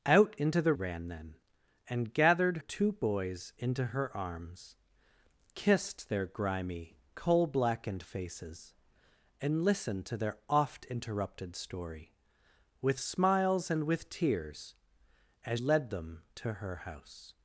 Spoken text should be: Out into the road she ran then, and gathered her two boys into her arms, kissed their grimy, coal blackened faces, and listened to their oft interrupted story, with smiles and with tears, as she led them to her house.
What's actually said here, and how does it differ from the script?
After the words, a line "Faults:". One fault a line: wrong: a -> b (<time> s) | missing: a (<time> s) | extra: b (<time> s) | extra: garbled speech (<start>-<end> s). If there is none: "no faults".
Out into the ran then, and gathered two boys into her arms, kissed their grimy, coal blackened faces, and listened to their oft interrupted story, with smiles and with tears, as led them to her house.
Faults:
missing: road she (0.7 s)
missing: her (2.6 s)
missing: she (15.6 s)